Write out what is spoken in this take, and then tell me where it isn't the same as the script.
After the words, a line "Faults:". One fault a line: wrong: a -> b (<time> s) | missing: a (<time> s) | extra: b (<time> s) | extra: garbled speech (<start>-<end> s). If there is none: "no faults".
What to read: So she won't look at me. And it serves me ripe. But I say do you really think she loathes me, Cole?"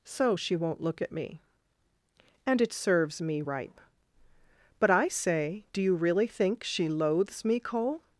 So she won't look at me. And it serves me ripe. But I say do you really think she loathes me, Cole?"
Faults:
no faults